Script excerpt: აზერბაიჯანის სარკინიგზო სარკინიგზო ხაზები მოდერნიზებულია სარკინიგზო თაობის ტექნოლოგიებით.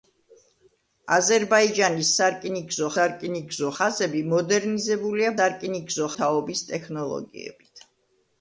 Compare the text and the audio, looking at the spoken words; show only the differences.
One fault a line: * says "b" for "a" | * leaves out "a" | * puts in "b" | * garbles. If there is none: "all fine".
all fine